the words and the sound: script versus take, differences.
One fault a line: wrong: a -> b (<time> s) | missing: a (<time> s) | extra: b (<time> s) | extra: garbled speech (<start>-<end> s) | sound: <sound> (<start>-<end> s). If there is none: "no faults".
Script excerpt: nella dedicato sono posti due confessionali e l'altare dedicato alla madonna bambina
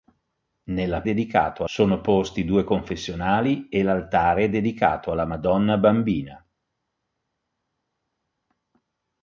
no faults